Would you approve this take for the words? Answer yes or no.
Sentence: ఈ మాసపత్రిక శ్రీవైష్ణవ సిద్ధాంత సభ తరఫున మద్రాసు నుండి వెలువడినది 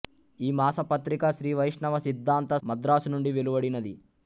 no